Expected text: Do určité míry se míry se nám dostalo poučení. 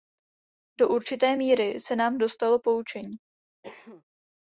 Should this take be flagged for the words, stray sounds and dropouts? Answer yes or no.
yes